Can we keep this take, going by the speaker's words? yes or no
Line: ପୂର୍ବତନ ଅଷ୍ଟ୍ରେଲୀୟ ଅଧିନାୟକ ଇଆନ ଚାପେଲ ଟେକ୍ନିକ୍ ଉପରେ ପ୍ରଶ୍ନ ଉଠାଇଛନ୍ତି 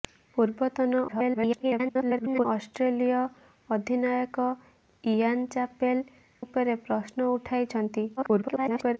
no